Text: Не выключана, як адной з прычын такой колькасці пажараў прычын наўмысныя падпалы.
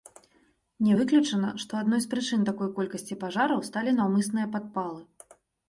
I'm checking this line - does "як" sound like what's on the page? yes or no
no